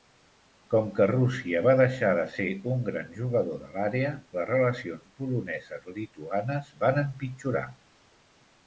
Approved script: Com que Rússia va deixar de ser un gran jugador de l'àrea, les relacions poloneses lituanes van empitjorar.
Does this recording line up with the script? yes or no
yes